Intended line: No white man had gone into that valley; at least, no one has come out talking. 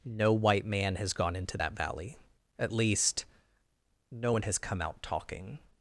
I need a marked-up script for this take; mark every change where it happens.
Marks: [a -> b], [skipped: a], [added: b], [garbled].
No white man [had -> has] gone into that valley; at least, no one has come out talking.